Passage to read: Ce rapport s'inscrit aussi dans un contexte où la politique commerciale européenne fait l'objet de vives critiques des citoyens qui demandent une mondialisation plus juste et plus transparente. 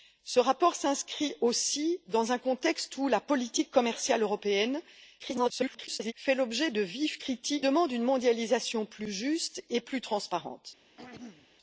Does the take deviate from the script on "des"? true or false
true